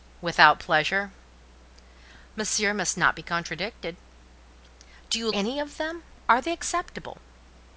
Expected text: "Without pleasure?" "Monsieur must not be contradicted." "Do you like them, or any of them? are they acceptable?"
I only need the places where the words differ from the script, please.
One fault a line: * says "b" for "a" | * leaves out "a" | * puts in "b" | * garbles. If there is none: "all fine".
* leaves out "like them or"